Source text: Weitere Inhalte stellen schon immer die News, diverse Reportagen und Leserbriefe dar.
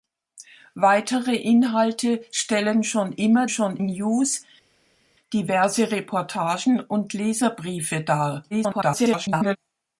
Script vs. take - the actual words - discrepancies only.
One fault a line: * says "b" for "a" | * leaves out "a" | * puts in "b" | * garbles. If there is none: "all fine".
* says "schon" for "die"
* garbles